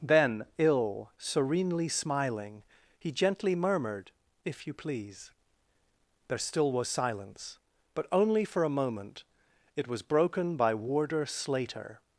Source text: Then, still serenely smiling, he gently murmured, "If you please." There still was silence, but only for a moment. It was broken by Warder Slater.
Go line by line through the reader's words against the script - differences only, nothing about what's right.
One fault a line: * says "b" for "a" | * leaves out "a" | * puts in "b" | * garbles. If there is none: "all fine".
* says "ill" for "still"